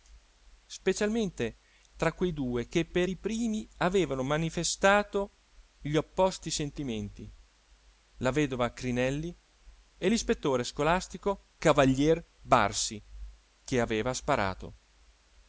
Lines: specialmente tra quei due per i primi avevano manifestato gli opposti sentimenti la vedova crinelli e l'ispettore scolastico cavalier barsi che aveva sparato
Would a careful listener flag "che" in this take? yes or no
no